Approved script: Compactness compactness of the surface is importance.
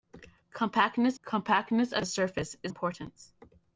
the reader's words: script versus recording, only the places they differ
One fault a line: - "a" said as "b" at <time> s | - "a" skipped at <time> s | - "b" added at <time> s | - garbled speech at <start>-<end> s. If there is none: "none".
none